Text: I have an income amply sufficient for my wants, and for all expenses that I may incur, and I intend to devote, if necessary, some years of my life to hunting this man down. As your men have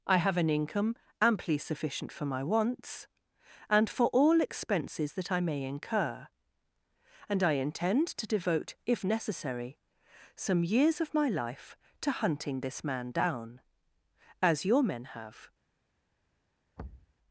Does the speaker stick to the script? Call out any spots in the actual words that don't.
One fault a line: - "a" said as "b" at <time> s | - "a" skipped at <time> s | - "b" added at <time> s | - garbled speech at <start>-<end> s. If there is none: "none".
none